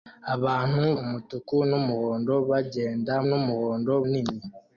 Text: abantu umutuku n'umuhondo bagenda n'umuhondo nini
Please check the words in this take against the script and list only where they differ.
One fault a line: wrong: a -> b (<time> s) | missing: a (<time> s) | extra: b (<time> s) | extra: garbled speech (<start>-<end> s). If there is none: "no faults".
no faults